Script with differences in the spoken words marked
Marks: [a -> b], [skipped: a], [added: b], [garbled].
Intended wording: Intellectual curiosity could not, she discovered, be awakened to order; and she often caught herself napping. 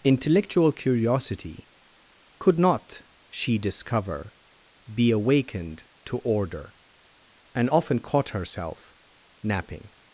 Intellectual curiosity could not, she [discovered, -> discover] be awakened to order; and [skipped: she] often caught herself napping.